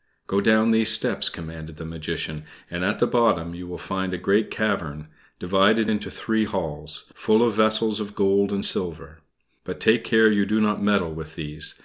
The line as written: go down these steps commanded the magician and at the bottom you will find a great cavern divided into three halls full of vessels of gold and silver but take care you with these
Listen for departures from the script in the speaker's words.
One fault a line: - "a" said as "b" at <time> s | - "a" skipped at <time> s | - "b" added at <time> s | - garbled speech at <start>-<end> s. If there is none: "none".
- "do not meddle" added at 10.4 s